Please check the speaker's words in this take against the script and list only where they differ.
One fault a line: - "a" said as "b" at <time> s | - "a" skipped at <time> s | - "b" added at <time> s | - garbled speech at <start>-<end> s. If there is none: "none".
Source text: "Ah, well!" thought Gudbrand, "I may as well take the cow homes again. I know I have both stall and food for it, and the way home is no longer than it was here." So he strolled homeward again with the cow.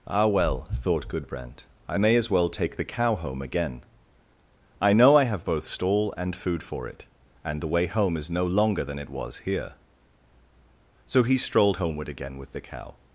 - "homes" said as "home" at 3.2 s